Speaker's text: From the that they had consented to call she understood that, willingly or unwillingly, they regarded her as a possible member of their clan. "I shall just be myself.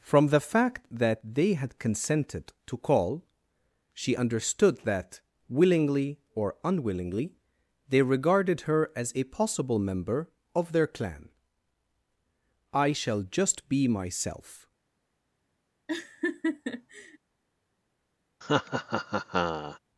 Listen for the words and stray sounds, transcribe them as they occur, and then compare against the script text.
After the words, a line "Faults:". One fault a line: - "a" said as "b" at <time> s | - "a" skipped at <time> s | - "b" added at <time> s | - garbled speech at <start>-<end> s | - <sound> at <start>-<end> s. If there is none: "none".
From the fact that they had consented to call she understood that, willingly or unwillingly, they regarded her as a possible member of their clan. "I shall just be myself.
Faults:
- "fact" added at 0.4 s
- laugh at 15.9-17.2 s
- laugh at 18.4-19.8 s